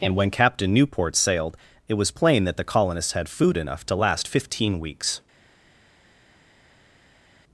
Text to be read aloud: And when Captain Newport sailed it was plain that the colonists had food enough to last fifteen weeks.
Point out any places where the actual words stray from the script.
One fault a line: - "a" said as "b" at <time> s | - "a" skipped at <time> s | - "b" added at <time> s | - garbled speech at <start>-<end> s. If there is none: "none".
none